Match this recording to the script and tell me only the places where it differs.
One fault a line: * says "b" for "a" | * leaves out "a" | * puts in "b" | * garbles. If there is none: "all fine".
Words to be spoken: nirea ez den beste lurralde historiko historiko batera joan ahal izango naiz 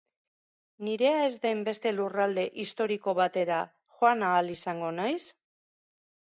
* leaves out "historiko"